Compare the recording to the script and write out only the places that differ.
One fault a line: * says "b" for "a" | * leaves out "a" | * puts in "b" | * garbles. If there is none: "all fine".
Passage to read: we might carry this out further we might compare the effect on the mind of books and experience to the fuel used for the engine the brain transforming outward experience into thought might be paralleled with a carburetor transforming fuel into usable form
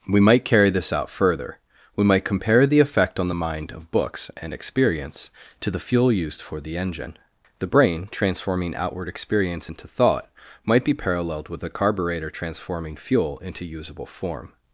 all fine